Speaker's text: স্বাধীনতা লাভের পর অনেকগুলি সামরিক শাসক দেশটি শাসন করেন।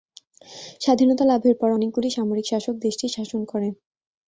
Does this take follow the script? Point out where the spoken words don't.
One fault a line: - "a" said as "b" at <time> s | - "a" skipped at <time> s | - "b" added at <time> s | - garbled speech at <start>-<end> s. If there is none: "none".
none